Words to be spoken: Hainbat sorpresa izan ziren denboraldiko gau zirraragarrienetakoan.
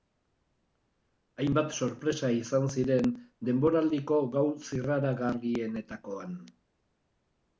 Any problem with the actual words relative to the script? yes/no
no